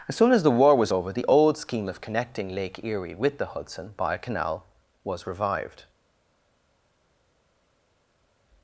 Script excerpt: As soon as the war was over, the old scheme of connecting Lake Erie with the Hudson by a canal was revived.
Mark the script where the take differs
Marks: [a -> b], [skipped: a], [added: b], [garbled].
As soon as the war was over, the old scheme of connecting Lake Erie with the Hudson by a canal was revived.